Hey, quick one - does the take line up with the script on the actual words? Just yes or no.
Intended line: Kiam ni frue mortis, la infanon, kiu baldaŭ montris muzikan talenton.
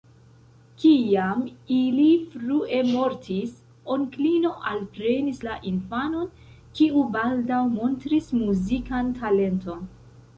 no